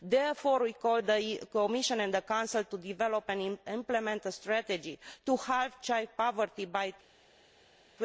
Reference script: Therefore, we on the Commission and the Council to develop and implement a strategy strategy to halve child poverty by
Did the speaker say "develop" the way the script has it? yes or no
yes